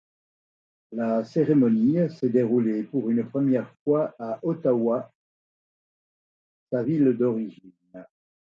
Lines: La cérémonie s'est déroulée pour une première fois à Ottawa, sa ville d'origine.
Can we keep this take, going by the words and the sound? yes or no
yes